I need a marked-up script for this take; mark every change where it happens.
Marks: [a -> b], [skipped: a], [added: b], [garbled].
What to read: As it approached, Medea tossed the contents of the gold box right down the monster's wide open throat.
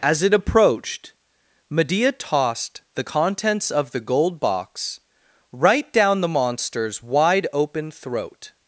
As it approached, Medea tossed the contents of the gold box right down the monster's wide open throat.